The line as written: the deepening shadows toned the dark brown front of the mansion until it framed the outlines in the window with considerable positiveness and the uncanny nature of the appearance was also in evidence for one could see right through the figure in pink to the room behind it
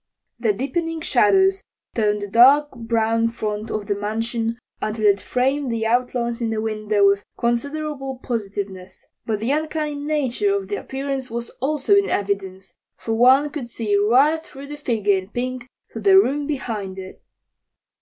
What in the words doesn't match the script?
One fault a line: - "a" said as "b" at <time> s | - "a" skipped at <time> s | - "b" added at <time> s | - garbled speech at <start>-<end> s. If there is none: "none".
- "and" said as "but" at 9.2 s